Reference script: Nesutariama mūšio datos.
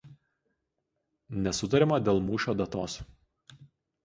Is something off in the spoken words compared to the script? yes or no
yes